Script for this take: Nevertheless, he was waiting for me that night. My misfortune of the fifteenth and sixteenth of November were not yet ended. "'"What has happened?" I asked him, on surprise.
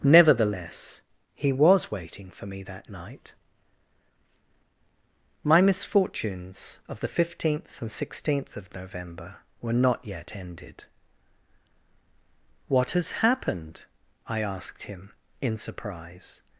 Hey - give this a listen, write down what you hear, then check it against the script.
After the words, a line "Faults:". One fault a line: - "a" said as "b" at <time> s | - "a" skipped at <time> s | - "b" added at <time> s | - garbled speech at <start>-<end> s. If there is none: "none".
Nevertheless, he was waiting for me that night. My misfortunes of the fifteenth and sixteenth of November were not yet ended. "'"What has happened?" I asked him, in surprise.
Faults:
- "misfortune" said as "misfortunes" at 5.6 s
- "on" said as "in" at 15.4 s